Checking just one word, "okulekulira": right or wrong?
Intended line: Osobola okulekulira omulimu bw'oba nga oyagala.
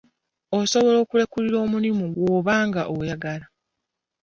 right